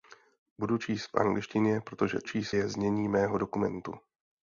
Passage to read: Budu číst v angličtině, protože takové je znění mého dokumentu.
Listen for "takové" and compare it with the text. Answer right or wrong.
wrong